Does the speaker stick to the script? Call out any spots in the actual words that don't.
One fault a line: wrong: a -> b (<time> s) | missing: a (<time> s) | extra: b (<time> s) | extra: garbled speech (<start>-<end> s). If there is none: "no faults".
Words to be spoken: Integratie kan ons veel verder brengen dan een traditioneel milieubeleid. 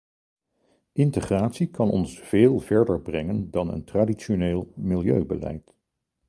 no faults